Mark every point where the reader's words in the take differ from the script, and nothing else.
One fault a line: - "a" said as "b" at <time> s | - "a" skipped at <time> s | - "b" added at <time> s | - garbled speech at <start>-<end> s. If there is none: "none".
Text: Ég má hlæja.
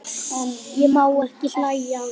- "ekki" added at 1.2 s